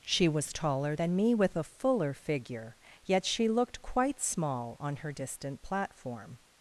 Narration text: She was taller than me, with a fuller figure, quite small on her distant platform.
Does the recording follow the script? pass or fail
fail